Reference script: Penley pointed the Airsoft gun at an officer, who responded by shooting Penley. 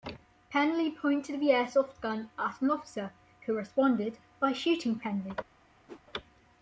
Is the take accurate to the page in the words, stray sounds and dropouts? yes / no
no